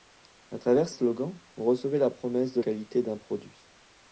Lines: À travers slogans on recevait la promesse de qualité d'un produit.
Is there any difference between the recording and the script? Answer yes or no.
no